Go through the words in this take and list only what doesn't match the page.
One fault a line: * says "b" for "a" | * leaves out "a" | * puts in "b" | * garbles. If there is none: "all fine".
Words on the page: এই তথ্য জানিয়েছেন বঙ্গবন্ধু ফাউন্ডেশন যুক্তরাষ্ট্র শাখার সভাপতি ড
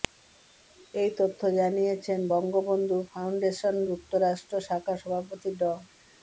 all fine